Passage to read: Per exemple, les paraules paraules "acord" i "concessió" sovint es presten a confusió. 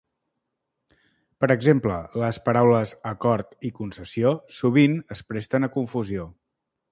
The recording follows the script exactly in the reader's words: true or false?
false